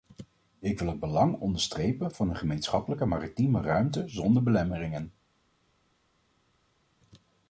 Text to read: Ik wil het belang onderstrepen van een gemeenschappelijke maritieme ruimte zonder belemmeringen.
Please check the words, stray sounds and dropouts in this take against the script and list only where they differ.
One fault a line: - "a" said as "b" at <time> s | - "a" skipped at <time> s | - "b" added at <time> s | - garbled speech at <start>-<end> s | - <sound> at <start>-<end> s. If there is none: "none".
none